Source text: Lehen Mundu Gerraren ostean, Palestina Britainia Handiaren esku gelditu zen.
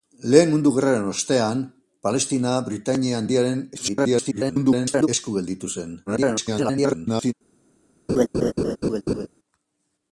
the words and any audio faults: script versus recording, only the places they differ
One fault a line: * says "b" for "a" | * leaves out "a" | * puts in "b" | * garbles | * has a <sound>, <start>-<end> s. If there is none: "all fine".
* garbles
* garbles
* has a laugh, 8.1-9.3 s